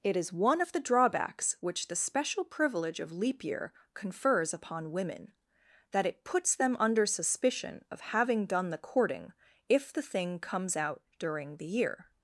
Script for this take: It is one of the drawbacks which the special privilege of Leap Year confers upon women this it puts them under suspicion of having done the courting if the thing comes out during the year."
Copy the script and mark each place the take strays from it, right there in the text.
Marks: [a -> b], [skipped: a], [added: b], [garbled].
It is one of the drawbacks which the special privilege of Leap Year confers upon women [this -> that] it puts them under suspicion of having done the courting if the thing comes out during the year."